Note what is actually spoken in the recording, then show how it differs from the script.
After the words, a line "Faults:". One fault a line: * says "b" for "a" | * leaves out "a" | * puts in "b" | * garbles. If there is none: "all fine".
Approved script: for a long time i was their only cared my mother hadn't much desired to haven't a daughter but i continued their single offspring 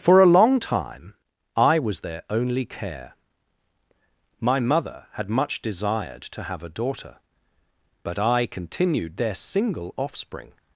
for a long time i was their only care my mother had much desired to have a daughter but i continued their single offspring
Faults:
* says "care" for "cared"
* says "had" for "hadn't"
* says "have" for "haven't"